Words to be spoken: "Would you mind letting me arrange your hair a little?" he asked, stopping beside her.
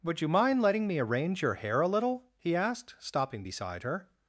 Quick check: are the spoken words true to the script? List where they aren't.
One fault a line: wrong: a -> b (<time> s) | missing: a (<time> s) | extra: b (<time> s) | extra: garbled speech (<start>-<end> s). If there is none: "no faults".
no faults